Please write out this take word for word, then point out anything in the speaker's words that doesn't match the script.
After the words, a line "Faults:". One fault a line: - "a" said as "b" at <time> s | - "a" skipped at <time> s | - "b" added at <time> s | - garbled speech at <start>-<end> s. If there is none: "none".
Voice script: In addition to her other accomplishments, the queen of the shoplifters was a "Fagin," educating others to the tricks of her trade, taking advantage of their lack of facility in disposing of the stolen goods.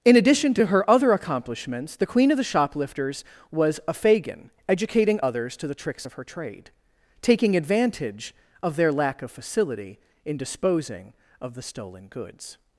In addition to her other accomplishments, the queen of the shoplifters was a "Fagin," educating others to the tricks of her trade, taking advantage of their lack of facility in disposing of the stolen goods.
Faults:
none